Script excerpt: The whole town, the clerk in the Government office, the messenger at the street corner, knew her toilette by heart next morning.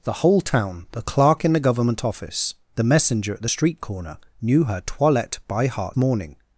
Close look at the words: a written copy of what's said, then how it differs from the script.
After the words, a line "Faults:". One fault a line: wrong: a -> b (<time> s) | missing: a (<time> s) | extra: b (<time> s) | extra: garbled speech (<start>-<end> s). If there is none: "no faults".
The whole town, the clerk in the Government office, the messenger at the street corner, knew her toilette by heart morning.
Faults:
missing: next (6.0 s)